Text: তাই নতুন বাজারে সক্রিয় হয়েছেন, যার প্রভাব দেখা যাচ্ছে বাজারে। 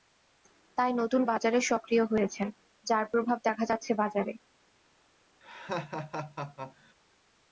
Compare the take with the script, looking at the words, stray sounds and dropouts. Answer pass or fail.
fail